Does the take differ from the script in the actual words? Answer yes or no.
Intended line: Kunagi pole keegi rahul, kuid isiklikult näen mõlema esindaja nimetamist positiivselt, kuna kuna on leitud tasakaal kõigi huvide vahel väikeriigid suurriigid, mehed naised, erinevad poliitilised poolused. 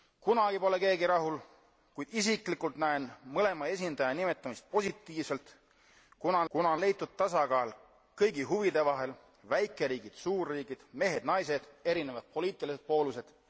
no